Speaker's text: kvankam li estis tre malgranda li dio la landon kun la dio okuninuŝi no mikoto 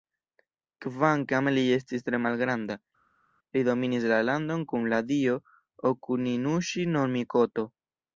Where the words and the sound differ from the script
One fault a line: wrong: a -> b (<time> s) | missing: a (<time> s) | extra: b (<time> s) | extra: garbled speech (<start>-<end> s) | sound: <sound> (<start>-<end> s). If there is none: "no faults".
wrong: dio -> dominis (3.7 s)